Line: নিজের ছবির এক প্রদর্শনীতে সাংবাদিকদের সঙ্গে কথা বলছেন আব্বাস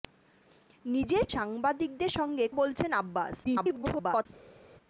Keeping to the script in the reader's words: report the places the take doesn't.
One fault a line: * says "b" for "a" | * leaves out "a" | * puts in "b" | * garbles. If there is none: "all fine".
* leaves out "ছবির এক প্রদর্শনীতে"
* leaves out "কথা"
* garbles